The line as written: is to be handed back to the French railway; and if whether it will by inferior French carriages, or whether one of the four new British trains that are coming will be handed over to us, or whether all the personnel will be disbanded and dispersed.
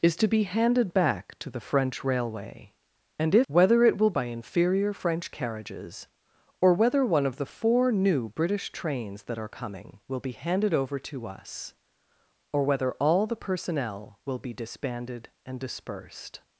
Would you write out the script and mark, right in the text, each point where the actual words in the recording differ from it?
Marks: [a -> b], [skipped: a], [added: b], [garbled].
is to be handed back to the French railway; and if whether it will by inferior French carriages, or whether one of the four new British trains that are coming will be handed over to us, or whether all the personnel will be disbanded and dispersed.